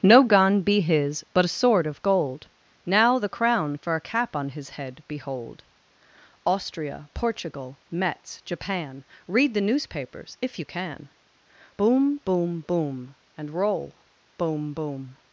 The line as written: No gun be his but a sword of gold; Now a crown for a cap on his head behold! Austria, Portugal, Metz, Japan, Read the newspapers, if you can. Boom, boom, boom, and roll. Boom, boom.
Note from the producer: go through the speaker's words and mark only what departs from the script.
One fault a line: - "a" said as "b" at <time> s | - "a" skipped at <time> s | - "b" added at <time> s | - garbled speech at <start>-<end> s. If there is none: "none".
- "a" said as "the" at 3.2 s